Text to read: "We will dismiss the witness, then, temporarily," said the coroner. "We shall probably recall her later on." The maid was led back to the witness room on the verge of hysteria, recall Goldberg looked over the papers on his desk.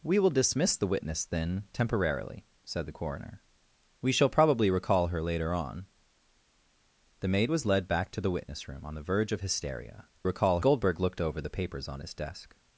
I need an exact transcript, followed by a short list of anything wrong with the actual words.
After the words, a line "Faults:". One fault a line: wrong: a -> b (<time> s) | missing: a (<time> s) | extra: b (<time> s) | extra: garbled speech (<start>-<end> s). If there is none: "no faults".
"We will dismiss the witness, then, temporarily," said the coroner. "We shall probably recall her later on." The maid was led back to the witness room on the verge of hysteria, recall Goldberg looked over the papers on his desk.
Faults:
no faults